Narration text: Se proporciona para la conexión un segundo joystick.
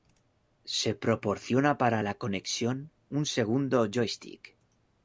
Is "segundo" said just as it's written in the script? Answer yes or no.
yes